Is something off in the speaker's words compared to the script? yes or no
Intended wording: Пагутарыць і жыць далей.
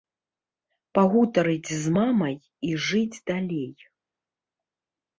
yes